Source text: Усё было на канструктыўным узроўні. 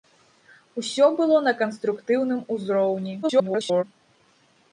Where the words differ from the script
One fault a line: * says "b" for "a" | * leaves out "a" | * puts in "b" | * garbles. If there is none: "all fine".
* garbles